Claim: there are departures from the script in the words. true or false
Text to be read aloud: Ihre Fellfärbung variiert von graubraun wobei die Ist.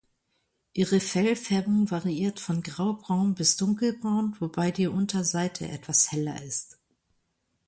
true